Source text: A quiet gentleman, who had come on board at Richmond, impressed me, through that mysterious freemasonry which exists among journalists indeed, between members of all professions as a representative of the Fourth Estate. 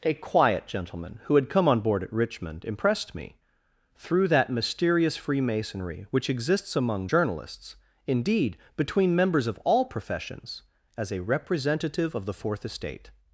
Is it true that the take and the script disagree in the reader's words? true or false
false